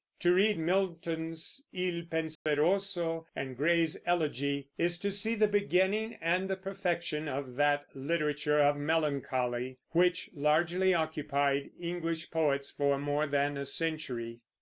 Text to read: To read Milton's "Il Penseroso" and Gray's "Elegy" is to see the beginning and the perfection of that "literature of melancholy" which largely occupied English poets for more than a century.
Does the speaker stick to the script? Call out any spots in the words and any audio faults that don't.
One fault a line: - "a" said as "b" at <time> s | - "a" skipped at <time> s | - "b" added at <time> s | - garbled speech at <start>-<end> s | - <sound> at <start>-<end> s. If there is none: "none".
- dropout at 2.4-2.5 s